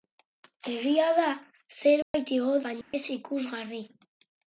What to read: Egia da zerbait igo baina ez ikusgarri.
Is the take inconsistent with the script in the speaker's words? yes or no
no